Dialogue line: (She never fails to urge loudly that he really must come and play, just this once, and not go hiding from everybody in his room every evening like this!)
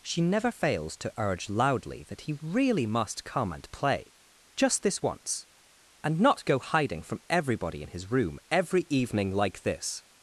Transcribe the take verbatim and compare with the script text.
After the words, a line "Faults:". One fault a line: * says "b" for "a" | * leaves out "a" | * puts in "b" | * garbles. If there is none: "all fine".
(She never fails to urge loudly that he really must come and play, just this once, and not go hiding from everybody in his room every evening like this!)
Faults:
all fine